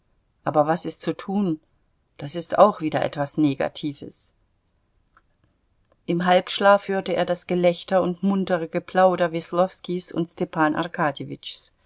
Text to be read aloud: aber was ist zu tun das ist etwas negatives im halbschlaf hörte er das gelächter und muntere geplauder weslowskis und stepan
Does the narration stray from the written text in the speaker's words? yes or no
yes